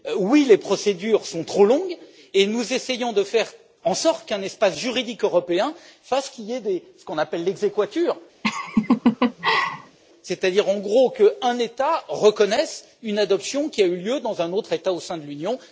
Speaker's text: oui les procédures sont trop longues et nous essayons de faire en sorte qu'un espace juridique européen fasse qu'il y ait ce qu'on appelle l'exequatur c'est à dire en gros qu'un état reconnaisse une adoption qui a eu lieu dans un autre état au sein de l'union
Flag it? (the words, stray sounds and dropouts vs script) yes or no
yes